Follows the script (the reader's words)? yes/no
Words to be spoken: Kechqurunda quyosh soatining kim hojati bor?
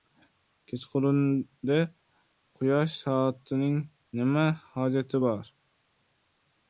no